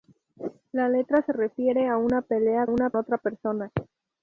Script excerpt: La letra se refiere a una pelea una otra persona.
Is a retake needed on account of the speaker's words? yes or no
no